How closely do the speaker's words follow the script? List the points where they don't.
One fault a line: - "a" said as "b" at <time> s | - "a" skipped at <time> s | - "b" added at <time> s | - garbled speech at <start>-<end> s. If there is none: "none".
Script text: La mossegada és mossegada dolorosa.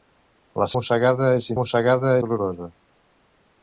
none